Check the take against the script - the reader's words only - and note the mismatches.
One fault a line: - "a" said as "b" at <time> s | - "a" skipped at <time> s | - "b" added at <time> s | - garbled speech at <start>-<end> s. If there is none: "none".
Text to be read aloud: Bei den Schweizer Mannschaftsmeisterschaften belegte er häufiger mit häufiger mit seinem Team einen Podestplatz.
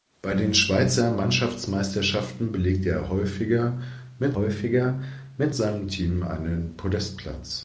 none